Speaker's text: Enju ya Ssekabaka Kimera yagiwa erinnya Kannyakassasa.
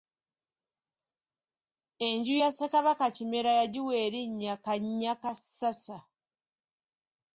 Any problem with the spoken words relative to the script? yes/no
no